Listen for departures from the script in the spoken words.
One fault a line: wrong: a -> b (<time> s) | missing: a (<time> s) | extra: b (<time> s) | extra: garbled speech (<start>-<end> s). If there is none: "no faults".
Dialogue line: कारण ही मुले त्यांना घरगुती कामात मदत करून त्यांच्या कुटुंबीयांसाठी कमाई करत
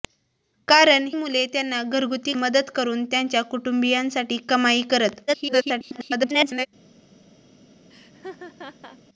missing: ही (1.1 s)
missing: कामात (2.3 s)
extra: garbled speech (5.3-6.7 s)